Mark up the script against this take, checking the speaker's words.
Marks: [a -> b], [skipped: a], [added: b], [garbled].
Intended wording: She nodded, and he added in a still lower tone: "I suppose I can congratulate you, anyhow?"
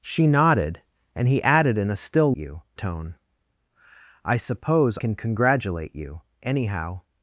She nodded, and he added in a still [lower -> you] tone: "I suppose [skipped: I] can congratulate you, anyhow?"